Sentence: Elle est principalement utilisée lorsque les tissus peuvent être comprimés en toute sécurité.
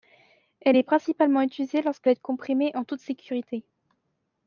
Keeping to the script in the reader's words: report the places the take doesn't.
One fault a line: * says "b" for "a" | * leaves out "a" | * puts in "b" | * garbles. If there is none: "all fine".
* leaves out "les tissus peuvent"